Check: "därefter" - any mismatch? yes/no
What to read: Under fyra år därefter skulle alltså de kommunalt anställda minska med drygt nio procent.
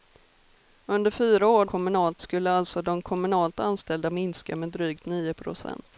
yes